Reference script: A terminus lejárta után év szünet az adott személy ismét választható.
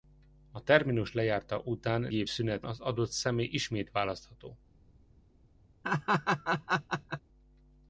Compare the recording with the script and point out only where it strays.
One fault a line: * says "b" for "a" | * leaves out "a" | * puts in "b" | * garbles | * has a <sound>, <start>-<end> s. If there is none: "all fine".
* has a laugh, 5.8-7.2 s